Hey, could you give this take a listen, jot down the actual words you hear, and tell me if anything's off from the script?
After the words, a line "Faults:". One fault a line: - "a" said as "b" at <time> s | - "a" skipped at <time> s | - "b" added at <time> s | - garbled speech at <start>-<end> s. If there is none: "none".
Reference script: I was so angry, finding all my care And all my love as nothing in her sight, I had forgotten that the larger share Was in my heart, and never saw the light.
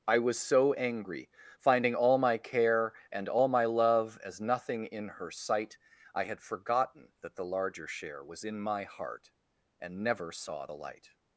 I was so angry, finding all my care And all my love as nothing in her sight, I had forgotten that the larger share Was in my heart, and never saw the light.
Faults:
none